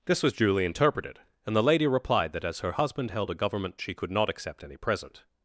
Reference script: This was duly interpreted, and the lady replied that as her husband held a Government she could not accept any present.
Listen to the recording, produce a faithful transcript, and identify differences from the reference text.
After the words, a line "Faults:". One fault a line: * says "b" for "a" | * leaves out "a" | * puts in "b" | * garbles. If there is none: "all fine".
This was duly interpreted, and the lady replied that as her husband held a Government she could not accept any present.
Faults:
all fine